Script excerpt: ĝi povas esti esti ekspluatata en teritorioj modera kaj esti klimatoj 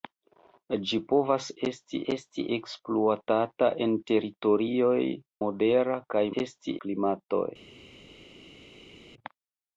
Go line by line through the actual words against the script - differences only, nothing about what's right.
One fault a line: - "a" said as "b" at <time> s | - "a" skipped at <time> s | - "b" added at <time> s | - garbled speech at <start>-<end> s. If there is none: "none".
none